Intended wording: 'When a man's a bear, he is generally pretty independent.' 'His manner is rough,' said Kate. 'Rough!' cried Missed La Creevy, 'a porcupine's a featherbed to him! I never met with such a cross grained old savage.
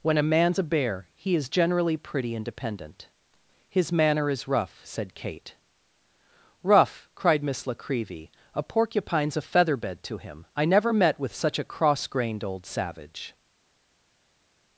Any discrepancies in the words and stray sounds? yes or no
yes